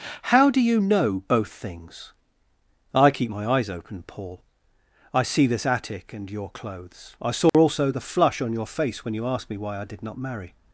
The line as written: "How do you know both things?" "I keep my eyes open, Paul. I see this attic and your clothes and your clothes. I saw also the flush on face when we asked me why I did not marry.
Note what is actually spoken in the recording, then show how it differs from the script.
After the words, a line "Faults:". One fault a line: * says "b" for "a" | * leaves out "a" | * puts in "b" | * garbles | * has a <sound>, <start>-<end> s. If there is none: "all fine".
"How do you know both things?" "I keep my eyes open, Paul. I see this attic and your clothes. I saw also the flush on your face when you asked me why I did not marry.
Faults:
* leaves out "and your clothes"
* has a dropout, 7.5-7.5 s
* puts in "your"
* says "you" for "we"